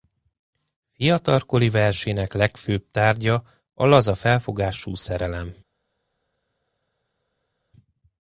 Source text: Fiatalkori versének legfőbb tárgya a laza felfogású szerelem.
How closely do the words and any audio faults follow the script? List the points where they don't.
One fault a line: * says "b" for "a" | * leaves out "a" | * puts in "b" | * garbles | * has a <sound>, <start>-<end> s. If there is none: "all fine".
all fine